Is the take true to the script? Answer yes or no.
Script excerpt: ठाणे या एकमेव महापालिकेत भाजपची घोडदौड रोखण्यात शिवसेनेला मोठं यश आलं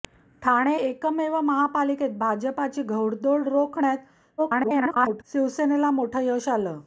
no